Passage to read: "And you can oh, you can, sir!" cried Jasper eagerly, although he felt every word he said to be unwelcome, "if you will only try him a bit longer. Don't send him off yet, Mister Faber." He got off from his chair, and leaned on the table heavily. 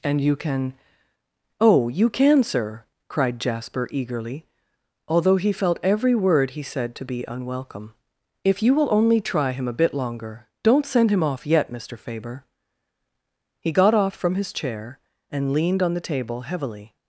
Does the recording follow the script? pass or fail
pass